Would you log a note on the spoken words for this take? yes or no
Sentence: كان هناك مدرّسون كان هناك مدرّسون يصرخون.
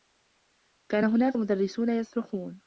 yes